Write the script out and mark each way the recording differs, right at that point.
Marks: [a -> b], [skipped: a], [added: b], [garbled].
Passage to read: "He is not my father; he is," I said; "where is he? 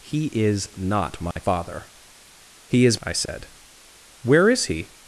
"He is not my father; he is," I said; "where is he?